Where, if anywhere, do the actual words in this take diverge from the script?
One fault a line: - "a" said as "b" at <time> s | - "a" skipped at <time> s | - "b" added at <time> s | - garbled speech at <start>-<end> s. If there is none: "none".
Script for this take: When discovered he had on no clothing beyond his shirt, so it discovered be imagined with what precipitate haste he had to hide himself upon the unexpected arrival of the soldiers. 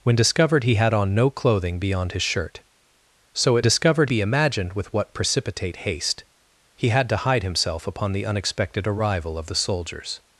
none